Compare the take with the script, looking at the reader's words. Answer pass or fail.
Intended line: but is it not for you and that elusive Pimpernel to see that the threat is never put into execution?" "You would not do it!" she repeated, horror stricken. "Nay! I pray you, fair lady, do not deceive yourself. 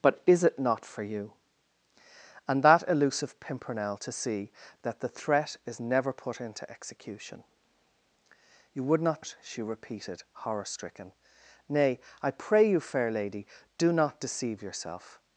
fail